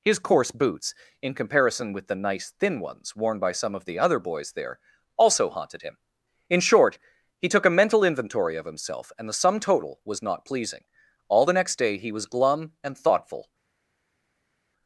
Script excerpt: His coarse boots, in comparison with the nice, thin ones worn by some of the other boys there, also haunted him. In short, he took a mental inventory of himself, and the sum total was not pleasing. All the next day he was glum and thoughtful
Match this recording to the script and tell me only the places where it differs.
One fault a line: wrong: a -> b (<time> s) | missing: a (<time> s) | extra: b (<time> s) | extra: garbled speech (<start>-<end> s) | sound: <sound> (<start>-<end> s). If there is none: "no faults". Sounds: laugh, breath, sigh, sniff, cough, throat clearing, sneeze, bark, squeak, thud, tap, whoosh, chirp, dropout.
no faults